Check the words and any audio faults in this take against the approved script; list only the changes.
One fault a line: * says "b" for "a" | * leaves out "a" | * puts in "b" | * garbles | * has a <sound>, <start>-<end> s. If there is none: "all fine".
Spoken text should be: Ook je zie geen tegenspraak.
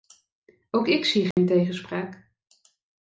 * says "ik" for "je"
* has a dropout, 1.3-1.4 s